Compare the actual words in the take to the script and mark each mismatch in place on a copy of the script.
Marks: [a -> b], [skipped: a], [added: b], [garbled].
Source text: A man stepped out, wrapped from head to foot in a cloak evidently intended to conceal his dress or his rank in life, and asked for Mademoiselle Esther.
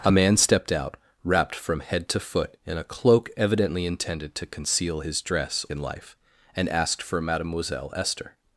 A man stepped out, wrapped from head to foot in a cloak evidently intended to conceal his dress [skipped: or his rank] in life, and asked for Mademoiselle Esther.